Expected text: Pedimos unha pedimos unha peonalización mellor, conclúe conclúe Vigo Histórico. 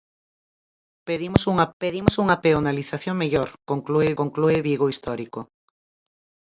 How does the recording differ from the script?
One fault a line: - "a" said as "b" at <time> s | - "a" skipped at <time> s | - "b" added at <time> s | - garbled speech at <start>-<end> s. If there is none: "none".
none